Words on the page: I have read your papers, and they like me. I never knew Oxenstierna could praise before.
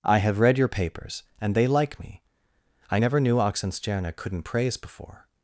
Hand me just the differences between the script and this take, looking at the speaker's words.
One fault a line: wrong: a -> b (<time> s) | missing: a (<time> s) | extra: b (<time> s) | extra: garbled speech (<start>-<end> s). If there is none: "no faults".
wrong: could -> couldn't (4.2 s)